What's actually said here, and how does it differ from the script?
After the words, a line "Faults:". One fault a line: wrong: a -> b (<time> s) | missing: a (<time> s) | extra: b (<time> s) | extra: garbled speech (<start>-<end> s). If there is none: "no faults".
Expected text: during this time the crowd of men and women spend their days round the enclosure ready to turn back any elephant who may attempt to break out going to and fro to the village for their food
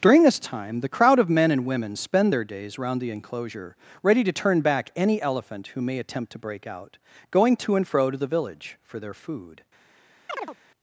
during this time the crowd of men and women spend their days round the enclosure ready to turn back any elephant who may attempt to break out going to and fro to the village for their food
Faults:
no faults